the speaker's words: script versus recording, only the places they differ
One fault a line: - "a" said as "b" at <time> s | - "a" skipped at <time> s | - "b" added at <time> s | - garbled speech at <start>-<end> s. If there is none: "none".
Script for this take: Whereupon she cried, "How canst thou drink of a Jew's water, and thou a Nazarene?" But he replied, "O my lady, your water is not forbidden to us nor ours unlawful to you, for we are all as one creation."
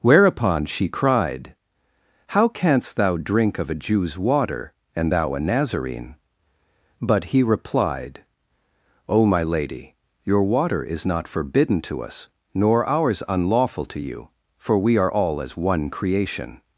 none